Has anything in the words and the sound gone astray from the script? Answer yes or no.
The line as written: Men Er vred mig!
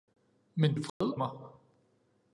yes